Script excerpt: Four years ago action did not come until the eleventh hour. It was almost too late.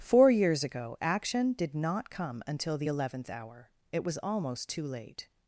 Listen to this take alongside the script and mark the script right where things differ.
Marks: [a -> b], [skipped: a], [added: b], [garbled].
Four years ago action did not come until the eleventh hour. It was almost too late.